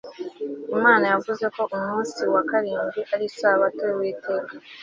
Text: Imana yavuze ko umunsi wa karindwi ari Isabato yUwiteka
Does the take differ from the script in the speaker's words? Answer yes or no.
no